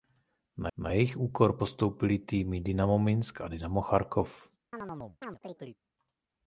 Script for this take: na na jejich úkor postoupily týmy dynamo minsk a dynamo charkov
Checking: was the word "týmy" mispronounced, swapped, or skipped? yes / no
no